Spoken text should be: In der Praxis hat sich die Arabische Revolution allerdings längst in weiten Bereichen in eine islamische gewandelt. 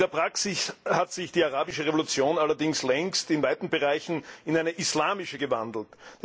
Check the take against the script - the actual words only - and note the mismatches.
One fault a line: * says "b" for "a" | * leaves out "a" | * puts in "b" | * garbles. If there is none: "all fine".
all fine